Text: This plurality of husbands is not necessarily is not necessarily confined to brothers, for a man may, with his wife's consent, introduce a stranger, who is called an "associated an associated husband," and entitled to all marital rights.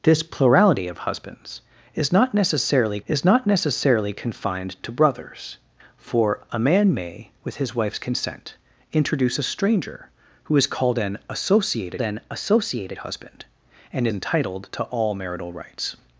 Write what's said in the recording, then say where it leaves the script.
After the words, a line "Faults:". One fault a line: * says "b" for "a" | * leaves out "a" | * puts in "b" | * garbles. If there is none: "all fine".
This plurality of husbands is not necessarily is not necessarily confined to brothers, for a man may, with his wife's consent, introduce a stranger, who is called an "associated an associated husband," and entitled to all marital rights.
Faults:
all fine